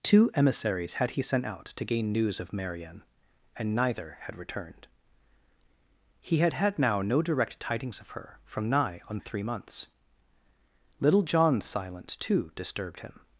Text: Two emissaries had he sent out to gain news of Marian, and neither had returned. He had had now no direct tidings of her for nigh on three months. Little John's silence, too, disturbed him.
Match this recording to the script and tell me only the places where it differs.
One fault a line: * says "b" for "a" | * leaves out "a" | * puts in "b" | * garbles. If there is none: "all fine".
* says "from" for "for"